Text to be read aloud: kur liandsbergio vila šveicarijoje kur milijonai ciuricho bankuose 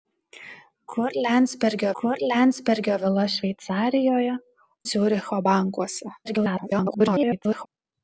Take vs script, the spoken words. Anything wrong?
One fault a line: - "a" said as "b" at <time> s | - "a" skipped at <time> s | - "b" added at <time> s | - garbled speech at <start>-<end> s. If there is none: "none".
- "kur liandsbergio" added at 2.0 s
- "kur milijonai" skipped at 4.4 s
- garbled speech at 6.2-7.7 s